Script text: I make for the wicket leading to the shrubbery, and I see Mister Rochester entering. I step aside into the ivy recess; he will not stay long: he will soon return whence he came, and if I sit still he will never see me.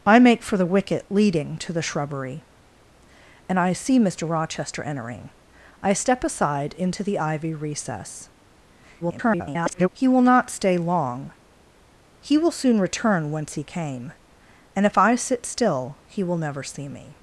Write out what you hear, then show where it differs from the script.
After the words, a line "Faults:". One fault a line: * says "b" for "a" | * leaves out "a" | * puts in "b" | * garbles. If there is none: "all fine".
I make for the wicket leading to the shrubbery, and I see Mister Rochester entering. I step aside into the ivy recess; [garbled] he will not stay long: he will soon return whence he came, and if I sit still he will never see me.
Faults:
* garbles